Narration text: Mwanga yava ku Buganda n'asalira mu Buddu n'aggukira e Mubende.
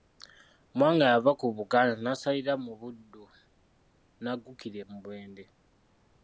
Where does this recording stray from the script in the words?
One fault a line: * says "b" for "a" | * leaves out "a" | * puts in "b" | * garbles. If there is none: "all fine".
all fine